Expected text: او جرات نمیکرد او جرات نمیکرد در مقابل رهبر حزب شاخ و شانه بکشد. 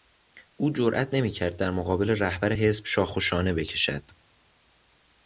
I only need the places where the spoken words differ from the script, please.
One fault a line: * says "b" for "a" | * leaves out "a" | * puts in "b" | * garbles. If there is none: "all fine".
* leaves out "او جرات نمیکرد"